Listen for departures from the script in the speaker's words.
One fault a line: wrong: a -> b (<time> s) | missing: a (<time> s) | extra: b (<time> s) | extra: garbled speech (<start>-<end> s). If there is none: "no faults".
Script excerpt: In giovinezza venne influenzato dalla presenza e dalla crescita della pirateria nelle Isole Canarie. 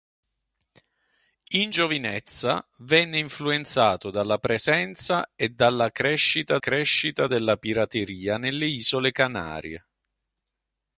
extra: crescita (6.6 s)